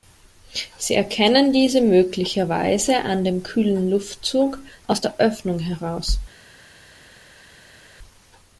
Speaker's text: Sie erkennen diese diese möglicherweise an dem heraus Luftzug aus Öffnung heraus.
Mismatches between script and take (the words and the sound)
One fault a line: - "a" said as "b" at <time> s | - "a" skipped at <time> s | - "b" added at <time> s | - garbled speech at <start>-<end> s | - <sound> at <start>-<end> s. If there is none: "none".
- "diese" skipped at 1.8 s
- "heraus" said as "kühlen" at 3.4 s
- "der" added at 5.0 s